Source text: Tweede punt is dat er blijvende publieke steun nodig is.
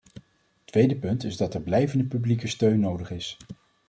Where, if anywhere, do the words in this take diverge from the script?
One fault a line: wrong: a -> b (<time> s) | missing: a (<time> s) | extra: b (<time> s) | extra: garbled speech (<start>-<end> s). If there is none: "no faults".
no faults